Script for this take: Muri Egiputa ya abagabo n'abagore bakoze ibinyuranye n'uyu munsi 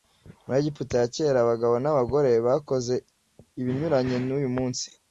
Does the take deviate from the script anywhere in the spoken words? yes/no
yes